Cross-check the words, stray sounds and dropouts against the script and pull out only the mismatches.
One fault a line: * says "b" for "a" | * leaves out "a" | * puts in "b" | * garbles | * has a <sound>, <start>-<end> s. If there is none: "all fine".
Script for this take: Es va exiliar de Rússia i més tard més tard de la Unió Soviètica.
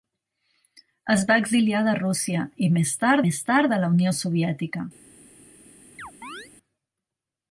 * has a chirp, 6.0-6.5 s